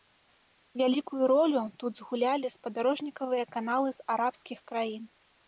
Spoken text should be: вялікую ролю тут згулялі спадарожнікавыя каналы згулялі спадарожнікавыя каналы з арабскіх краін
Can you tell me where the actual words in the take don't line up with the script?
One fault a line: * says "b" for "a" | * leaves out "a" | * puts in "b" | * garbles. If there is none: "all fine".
* leaves out "згулялі спадарожнікавыя каналы"